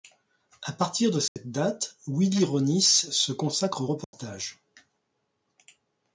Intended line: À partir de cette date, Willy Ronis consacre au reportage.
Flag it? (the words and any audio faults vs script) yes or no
yes